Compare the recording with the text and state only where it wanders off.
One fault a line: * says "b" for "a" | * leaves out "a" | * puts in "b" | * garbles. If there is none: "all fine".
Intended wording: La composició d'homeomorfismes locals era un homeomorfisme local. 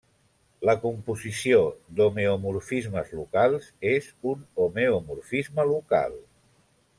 * says "és" for "era"